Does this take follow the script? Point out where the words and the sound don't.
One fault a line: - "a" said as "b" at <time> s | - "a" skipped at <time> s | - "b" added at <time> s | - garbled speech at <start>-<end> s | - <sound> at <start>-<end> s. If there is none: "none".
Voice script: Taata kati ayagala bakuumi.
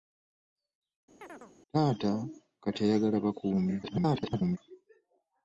- chirp at 1.2-1.5 s
- garbled speech at 3.8-4.6 s